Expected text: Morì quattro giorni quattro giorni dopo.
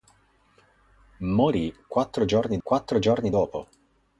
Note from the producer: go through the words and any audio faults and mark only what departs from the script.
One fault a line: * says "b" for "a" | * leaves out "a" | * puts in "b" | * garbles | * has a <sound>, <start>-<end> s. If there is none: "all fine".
all fine